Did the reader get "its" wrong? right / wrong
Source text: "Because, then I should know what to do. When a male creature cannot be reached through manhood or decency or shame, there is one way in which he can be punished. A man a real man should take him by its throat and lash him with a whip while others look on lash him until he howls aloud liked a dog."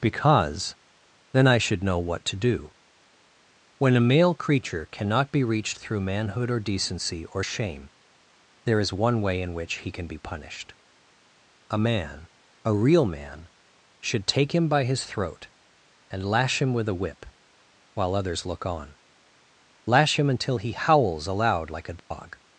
wrong